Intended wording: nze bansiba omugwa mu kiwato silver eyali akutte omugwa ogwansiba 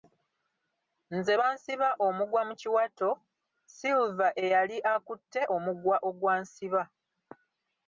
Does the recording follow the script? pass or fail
pass